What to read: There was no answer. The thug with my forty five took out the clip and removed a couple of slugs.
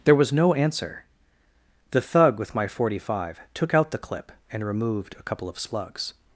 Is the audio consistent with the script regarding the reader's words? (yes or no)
yes